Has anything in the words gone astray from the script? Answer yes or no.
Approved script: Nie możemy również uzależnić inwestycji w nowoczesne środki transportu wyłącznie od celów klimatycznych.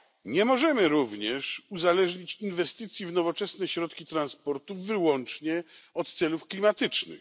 no